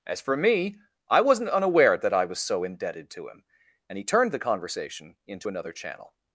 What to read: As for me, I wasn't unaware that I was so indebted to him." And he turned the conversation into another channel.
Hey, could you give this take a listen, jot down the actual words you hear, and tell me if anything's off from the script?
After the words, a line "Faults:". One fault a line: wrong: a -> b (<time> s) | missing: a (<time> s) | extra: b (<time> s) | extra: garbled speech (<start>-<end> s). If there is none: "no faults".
As for me, I wasn't unaware that I was so indebted to him." And he turned the conversation into another channel.
Faults:
no faults